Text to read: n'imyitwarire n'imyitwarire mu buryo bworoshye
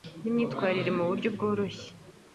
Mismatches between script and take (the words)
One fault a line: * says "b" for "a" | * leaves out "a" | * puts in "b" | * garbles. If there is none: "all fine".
* leaves out "n'imyitwarire"